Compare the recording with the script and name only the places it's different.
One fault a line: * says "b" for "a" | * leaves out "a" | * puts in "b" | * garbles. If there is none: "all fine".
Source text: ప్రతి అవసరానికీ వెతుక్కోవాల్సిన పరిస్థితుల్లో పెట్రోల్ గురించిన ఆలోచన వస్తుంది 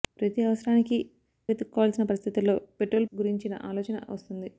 all fine